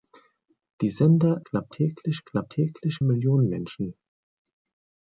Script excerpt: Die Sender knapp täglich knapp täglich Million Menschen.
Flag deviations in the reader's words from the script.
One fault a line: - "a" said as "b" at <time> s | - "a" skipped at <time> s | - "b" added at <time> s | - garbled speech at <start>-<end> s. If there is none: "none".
none